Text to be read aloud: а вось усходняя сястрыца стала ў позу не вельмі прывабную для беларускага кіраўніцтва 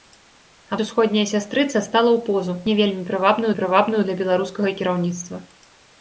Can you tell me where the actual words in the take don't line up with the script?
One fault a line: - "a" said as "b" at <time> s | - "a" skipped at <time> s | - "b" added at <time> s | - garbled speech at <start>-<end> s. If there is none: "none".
- "вось" skipped at 0.8 s
- "прывабную" added at 3.6 s